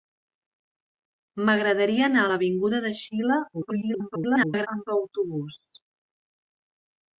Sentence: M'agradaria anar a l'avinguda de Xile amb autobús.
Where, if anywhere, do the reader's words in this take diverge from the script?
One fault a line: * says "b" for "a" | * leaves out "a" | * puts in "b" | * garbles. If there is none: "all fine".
* garbles